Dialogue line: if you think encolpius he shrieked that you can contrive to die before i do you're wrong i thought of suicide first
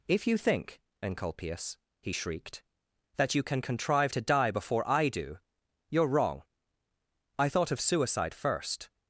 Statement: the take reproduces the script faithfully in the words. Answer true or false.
true